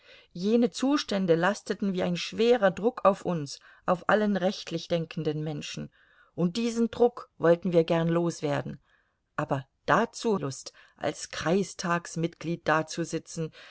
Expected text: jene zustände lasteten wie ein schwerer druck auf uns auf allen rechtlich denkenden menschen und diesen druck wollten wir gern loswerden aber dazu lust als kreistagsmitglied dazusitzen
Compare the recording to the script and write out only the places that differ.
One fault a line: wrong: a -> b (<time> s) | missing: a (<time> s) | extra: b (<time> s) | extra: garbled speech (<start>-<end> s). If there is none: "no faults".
no faults